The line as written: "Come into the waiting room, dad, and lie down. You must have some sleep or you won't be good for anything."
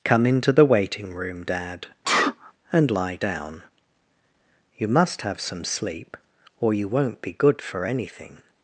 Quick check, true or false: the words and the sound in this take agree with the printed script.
false